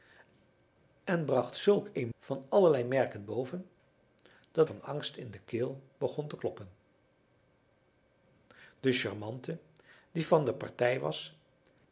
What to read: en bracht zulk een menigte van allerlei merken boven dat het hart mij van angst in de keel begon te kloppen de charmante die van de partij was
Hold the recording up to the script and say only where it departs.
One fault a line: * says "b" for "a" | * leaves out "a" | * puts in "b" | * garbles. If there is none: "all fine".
* leaves out "menigte"
* leaves out "het hart mij"